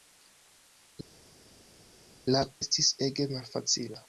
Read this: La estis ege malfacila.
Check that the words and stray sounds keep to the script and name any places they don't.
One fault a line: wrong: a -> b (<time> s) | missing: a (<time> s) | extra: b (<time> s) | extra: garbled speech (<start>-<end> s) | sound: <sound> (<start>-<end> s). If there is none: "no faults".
no faults